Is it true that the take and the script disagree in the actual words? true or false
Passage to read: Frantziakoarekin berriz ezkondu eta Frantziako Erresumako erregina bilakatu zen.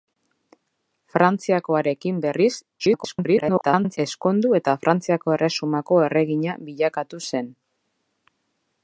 true